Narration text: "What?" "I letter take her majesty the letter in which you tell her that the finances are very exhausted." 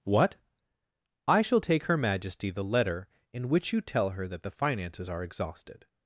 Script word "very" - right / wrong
wrong